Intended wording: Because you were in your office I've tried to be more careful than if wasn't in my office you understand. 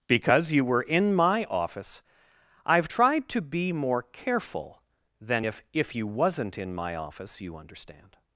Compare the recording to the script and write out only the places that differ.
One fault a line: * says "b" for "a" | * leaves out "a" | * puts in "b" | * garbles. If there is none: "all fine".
* says "my" for "your"
* puts in "if you"